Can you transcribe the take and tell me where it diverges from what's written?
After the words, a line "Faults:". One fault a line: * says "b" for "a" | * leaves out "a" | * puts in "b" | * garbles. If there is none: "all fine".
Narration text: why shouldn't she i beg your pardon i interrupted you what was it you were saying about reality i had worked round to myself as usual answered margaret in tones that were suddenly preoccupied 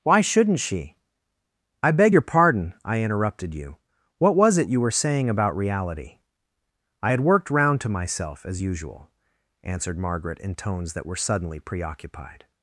why shouldn't she i beg your pardon i interrupted you what was it you were saying about reality i had worked round to myself as usual answered margaret in tones that were suddenly preoccupied
Faults:
all fine